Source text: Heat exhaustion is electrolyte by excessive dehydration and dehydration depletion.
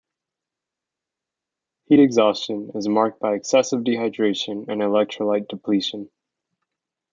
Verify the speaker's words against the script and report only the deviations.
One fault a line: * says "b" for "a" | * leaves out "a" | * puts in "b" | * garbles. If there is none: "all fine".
* says "marked" for "electrolyte"
* says "electrolyte" for "dehydration"